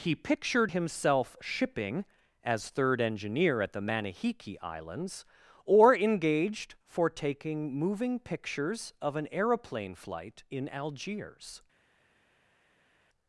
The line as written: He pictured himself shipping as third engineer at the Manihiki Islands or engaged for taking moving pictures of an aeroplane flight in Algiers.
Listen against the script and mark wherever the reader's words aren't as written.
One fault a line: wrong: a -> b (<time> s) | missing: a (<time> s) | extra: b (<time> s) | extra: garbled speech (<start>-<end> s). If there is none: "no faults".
no faults